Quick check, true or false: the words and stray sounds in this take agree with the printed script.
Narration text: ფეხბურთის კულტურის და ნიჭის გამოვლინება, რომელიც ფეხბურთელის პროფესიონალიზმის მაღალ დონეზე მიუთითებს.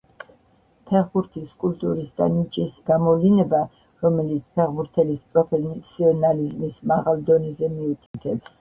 false